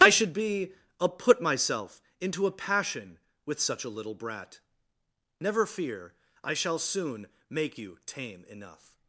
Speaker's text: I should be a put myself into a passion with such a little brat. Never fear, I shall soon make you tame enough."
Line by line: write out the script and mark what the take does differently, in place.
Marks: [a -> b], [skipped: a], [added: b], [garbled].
I should be a put myself into a passion with such a little brat. Never fear, I shall soon make you tame enough."